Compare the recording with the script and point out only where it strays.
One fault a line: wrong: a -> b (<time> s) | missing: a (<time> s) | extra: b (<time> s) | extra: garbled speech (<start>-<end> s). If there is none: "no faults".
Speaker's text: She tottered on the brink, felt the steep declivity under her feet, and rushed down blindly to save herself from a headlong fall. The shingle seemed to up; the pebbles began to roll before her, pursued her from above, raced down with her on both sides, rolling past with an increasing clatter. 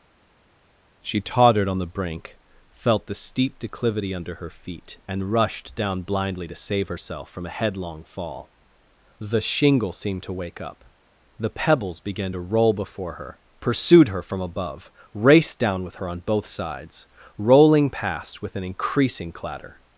extra: wake (10.3 s)